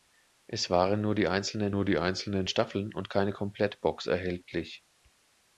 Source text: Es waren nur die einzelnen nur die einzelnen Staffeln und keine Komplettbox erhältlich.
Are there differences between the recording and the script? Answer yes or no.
no